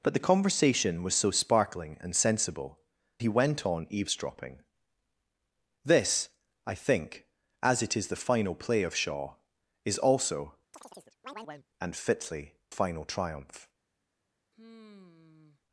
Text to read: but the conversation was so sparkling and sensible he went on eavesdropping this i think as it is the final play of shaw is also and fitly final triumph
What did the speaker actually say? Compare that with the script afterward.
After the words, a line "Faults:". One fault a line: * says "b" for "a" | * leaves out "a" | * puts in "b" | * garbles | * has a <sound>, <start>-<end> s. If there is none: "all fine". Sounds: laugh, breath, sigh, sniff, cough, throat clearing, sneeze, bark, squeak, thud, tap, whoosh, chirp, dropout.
but the conversation was so sparkling and sensible he went on eavesdropping this i think as it is the final play of shaw is also and fitly final triumph
Faults:
* has a chirp, 10.7-11.7 s
* has a sigh, 14.5-15.6 s